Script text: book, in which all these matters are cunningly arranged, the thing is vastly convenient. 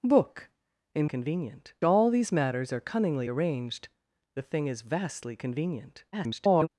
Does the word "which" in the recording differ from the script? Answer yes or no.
yes